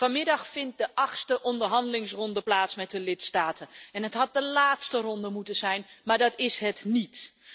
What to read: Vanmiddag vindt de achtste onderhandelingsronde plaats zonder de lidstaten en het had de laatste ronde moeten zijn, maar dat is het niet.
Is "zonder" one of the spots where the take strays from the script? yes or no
yes